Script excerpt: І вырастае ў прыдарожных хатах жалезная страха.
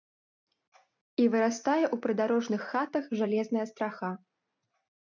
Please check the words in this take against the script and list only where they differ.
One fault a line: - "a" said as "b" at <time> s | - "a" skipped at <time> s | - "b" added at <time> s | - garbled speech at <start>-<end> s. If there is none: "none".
none